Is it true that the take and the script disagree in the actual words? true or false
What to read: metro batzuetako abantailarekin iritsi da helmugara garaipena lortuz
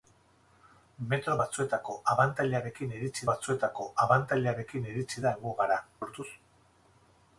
true